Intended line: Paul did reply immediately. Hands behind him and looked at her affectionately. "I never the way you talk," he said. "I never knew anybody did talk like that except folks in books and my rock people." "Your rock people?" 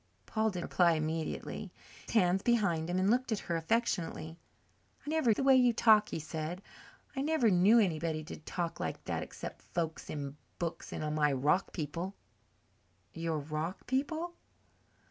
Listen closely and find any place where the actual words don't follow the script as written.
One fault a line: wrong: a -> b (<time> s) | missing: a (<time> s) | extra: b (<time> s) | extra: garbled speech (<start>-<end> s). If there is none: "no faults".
no faults